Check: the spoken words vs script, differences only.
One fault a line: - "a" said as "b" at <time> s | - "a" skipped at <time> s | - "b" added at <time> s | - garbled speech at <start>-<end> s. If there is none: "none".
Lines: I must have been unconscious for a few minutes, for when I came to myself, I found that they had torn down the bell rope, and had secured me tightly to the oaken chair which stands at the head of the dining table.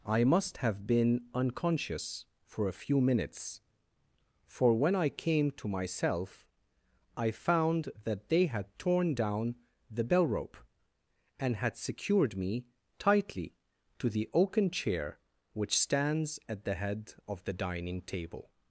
none